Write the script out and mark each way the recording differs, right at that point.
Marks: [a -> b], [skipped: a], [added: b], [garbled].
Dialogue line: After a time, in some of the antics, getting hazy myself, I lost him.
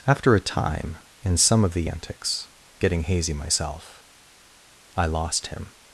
After a time, in some of the antics, getting hazy myself, I lost him.